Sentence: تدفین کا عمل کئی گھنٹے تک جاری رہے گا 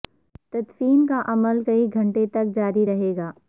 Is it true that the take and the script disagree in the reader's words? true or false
false